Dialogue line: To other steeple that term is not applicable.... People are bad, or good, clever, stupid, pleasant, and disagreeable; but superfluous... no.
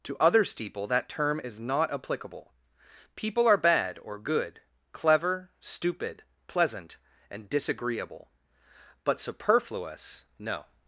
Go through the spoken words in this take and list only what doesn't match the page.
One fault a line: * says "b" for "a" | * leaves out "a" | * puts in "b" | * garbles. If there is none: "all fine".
all fine